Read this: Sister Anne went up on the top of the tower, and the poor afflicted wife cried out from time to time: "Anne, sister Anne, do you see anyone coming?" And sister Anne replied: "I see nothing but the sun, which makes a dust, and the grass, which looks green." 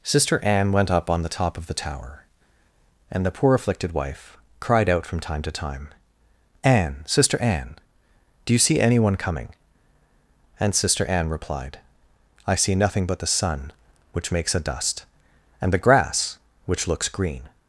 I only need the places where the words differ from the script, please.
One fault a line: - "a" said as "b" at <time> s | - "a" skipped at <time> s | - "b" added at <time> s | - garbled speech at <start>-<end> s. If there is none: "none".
none